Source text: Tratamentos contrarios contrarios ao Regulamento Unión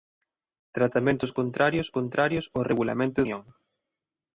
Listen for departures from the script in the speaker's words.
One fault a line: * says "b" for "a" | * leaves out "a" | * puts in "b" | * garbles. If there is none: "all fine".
all fine